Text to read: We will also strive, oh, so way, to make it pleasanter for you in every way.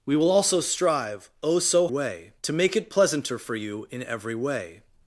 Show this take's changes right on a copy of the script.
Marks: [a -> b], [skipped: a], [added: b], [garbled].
We will also strive, oh, so way, to make it pleasanter for you in every way.